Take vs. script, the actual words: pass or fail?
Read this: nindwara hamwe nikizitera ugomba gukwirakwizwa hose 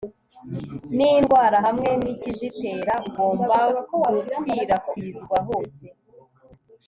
pass